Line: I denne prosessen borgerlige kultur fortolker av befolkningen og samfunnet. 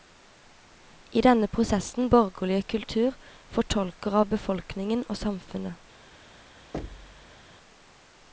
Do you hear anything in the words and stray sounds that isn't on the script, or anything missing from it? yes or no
yes